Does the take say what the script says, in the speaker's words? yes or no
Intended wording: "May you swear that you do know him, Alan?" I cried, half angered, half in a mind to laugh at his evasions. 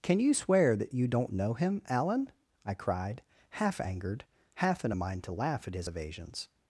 no